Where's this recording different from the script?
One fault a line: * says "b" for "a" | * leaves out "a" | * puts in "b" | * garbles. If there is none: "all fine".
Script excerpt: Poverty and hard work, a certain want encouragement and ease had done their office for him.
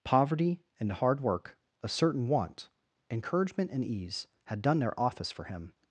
all fine